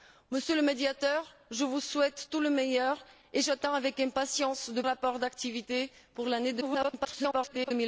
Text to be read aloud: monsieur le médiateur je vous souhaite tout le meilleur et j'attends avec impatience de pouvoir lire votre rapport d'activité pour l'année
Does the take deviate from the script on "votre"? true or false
true